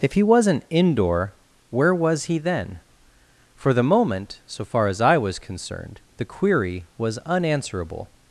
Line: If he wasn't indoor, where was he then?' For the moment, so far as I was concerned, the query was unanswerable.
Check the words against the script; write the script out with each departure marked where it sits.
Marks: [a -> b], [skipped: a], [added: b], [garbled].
If he wasn't indoor, where was he then?' For the moment, so far as I was concerned, the query was unanswerable.